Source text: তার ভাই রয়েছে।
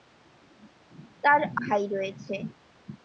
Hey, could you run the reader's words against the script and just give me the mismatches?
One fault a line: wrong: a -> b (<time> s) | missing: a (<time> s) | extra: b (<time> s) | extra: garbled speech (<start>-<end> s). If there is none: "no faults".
no faults